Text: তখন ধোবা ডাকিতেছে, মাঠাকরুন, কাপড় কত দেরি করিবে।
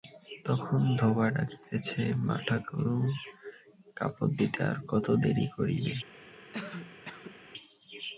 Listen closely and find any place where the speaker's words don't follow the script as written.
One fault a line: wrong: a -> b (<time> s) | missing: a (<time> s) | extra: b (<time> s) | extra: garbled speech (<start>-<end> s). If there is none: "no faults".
extra: দিতে আর (4.4 s)